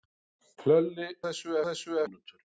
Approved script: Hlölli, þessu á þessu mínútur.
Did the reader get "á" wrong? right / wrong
right